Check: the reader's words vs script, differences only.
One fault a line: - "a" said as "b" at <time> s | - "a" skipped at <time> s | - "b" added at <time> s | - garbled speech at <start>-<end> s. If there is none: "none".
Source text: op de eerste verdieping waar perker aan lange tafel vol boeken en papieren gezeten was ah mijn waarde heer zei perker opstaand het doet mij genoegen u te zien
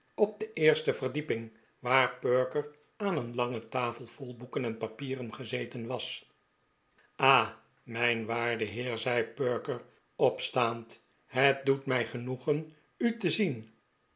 - "een" added at 3.2 s